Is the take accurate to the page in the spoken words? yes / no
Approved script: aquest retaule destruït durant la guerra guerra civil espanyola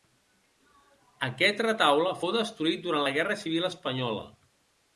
no